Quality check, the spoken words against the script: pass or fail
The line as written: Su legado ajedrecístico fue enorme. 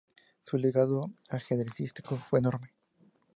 pass